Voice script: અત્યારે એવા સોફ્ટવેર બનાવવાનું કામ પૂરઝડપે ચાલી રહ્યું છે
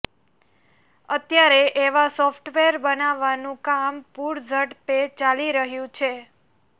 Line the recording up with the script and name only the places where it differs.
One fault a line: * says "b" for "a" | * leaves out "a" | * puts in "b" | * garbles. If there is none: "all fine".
all fine